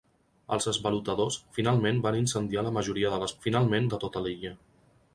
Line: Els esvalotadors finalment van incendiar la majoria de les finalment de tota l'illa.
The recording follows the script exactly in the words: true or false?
true